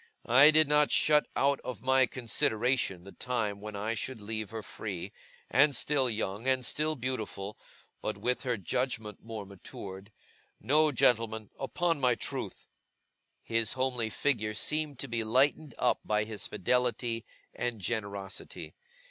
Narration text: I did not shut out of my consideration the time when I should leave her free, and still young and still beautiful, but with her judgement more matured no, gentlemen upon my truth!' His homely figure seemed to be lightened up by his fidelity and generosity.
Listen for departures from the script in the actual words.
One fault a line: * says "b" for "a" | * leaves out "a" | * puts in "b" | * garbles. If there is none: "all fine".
all fine